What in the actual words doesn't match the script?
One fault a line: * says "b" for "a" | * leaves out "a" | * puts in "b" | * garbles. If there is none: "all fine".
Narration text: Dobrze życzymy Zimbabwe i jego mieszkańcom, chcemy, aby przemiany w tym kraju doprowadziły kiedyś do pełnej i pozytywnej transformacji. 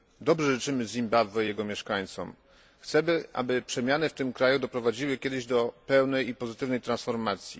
all fine